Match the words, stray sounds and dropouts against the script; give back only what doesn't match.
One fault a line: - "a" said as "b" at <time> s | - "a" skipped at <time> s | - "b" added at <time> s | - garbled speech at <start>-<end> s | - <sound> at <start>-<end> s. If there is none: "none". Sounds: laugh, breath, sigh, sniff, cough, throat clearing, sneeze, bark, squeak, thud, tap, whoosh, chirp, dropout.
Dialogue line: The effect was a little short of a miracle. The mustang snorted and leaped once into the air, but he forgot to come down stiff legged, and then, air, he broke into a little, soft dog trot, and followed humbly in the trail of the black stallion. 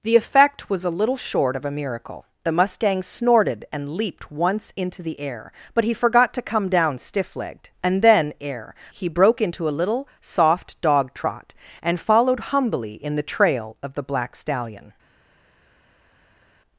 none